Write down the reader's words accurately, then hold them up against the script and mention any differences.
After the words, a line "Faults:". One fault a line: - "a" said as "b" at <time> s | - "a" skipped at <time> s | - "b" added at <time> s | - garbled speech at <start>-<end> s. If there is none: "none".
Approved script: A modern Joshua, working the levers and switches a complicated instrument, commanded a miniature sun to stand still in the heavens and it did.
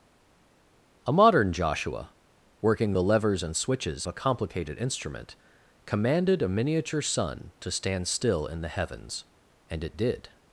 A modern Joshua, working the levers and switches a complicated instrument, commanded a miniature sun to stand still in the heavens and it did.
Faults:
none